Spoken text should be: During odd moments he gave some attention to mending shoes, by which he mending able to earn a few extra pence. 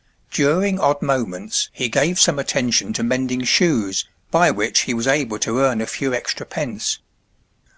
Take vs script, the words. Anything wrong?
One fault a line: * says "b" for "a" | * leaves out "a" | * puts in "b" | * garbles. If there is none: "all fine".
* says "was" for "mending"